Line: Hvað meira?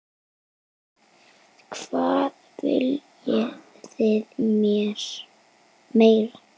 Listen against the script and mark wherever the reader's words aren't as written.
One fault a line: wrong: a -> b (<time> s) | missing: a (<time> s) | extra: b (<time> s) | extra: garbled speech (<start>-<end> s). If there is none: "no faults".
extra: viljið þið (2.6 s)